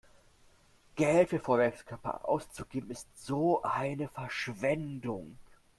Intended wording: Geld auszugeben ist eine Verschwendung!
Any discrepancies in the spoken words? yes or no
yes